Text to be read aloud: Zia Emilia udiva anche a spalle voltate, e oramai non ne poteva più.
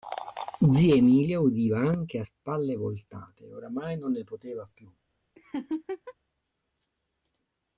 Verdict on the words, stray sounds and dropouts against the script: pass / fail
fail